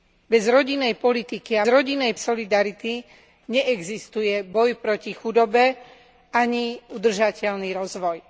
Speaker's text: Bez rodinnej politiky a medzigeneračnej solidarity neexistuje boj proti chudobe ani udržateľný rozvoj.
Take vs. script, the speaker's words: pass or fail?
fail